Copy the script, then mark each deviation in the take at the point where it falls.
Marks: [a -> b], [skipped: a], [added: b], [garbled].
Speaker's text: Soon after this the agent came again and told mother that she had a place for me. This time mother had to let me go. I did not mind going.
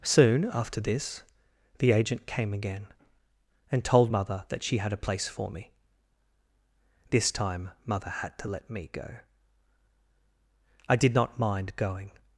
Soon after this the agent came again and told mother that she had a place for me. This time mother had to let me go. I did not mind going.